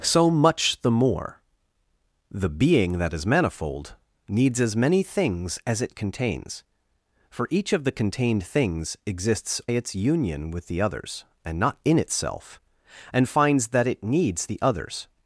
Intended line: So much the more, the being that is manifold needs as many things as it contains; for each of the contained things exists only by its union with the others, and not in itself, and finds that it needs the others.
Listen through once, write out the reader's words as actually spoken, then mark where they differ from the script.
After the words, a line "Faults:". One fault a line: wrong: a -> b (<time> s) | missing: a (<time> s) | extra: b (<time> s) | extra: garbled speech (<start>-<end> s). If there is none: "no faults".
So much the more, the being that is manifold needs as many things as it contains; for each of the contained things exists its union with the others, and not in itself, and finds that it needs the others.
Faults:
missing: only by (9.6 s)